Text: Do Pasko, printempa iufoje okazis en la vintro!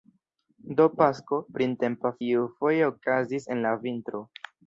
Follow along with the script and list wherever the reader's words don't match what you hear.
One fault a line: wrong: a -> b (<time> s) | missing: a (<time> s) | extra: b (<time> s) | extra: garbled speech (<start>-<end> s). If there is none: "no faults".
no faults